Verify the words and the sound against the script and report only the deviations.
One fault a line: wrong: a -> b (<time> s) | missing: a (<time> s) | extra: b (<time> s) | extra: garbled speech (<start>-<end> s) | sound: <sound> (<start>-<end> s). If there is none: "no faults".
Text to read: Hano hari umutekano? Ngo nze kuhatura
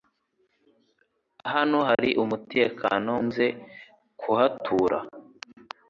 sound: dropout (1.9-2.0 s)
missing: Ngo (3.1 s)